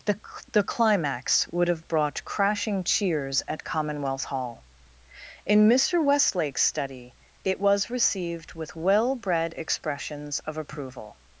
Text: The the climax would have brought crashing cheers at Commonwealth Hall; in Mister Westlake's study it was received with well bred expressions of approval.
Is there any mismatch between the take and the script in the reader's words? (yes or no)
no